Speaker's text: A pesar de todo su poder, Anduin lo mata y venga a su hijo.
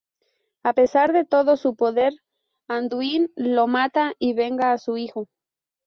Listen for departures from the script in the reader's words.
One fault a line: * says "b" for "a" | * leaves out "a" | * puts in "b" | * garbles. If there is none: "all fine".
all fine